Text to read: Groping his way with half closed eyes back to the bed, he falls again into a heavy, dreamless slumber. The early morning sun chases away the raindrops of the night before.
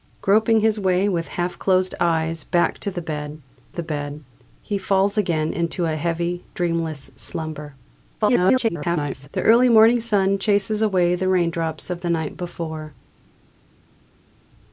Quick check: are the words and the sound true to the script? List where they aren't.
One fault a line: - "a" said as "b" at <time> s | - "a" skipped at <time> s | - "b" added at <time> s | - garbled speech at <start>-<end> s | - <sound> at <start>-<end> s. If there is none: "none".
- "the bed" added at 3.7 s
- garbled speech at 8.2-9.3 s